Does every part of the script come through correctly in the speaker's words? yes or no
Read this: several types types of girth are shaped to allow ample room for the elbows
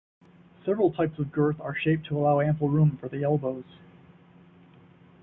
no